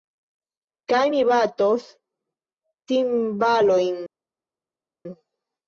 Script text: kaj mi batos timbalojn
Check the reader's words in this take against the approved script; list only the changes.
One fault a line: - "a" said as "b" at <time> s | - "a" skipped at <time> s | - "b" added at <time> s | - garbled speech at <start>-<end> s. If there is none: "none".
none